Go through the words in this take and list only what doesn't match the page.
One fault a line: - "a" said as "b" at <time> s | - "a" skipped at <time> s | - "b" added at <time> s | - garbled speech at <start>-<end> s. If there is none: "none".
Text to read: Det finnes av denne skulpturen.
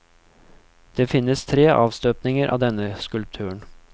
- "tre avstøpninger" added at 1.4 s